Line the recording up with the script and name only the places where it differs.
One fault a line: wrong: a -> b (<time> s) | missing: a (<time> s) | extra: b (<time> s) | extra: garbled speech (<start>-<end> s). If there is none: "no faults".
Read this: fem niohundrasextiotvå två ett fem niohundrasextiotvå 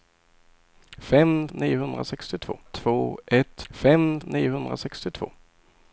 no faults